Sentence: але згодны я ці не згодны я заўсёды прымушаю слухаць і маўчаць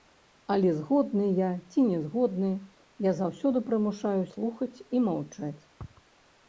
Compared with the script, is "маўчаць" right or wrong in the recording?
right